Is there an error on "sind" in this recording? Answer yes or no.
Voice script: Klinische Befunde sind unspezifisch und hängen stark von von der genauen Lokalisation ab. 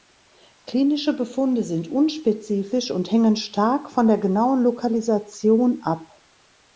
no